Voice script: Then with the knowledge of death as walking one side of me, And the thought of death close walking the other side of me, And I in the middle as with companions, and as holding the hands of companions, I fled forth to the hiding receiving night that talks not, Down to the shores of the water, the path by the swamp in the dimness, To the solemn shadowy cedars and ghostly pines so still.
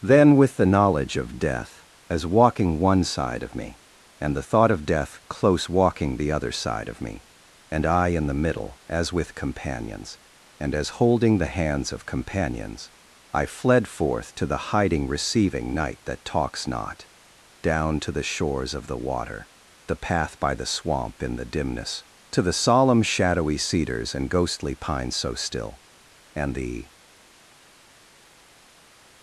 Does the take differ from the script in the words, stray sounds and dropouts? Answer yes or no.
yes